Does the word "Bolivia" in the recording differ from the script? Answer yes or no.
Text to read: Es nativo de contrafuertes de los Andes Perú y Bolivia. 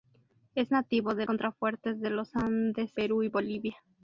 no